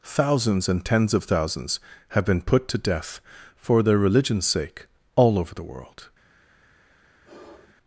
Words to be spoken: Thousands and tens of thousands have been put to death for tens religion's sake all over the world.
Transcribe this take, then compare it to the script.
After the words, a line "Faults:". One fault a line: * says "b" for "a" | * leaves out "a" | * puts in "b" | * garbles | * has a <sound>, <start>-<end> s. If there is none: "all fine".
Thousands and tens of thousands have been put to death for their religion's sake all over the world.
Faults:
* says "their" for "tens"
* has a sigh, 7.2-7.7 s